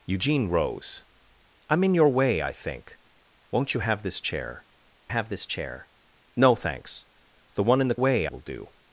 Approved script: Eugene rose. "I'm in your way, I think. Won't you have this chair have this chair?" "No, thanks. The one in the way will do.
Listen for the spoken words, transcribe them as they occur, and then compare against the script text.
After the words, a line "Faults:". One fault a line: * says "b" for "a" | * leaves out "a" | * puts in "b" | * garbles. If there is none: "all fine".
Eugene rose. "I'm in your way, I think. Won't you have this chair have this chair?" "No, thanks. The one in the way will do.
Faults:
all fine